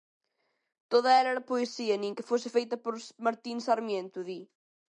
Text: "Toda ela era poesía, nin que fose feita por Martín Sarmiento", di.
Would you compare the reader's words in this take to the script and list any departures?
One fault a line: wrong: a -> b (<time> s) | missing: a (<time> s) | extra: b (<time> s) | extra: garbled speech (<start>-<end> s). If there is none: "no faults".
no faults